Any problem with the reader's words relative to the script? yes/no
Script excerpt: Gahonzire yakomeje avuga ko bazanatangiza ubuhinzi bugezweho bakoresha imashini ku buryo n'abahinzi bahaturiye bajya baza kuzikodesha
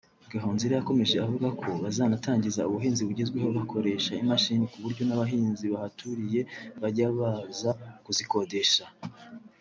no